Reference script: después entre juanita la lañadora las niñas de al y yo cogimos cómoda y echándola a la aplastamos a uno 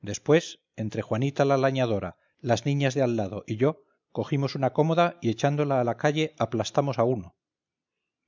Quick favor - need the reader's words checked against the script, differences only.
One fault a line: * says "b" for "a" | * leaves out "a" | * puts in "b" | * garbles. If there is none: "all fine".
* puts in "lado"
* puts in "una"
* puts in "calle"